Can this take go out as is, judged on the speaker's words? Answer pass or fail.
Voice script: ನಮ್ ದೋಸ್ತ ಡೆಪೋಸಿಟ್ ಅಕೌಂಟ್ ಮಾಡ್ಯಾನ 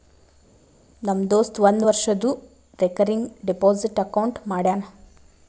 fail